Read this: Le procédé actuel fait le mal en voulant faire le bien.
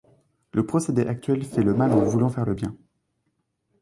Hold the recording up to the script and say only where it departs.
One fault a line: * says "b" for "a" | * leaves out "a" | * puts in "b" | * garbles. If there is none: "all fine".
all fine